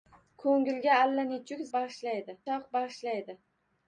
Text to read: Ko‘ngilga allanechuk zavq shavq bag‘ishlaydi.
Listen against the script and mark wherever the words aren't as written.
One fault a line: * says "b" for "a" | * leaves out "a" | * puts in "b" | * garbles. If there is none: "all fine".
* says "bag‘ishlaydi" for "zavq"